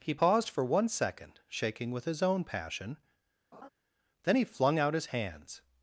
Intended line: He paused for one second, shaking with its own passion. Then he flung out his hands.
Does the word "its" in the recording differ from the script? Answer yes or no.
yes